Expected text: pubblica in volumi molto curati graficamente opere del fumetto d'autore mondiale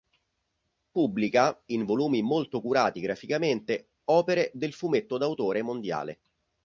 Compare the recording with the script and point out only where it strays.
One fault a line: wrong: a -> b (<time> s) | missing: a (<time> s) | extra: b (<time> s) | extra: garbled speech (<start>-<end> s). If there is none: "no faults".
no faults